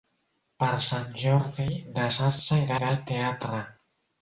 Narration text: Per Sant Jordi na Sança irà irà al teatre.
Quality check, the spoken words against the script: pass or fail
pass